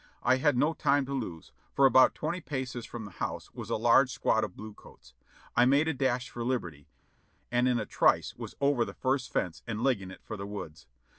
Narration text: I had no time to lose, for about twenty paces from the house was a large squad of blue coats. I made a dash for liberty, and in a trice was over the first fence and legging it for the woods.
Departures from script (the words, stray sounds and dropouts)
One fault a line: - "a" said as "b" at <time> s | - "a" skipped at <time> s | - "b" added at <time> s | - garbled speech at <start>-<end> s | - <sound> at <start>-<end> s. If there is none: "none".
none